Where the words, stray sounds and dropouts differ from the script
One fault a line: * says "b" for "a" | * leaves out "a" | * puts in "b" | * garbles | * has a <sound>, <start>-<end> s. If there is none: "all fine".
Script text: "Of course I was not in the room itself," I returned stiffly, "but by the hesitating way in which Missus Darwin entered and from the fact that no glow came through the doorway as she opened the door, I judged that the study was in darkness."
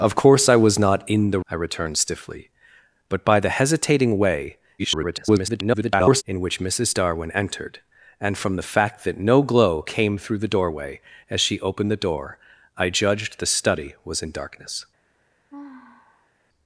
* leaves out "room itself"
* garbles
* leaves out "that"
* has a sigh, 15.5-16.3 s